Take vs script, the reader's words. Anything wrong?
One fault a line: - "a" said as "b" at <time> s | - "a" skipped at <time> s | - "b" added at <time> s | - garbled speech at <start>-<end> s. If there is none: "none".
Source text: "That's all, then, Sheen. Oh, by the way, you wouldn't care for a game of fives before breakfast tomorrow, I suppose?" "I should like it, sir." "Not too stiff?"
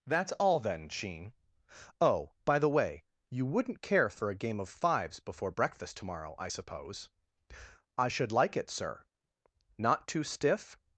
none